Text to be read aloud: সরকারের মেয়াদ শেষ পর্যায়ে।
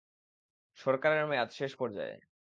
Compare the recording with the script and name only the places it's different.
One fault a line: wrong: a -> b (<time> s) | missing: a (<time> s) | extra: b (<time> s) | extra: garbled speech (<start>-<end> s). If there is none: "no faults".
no faults